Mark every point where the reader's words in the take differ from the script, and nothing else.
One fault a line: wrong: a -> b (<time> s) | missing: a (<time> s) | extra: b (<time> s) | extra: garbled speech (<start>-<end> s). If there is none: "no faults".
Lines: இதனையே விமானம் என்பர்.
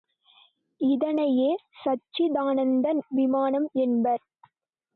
extra: சச்சிதானந்த (1.8 s)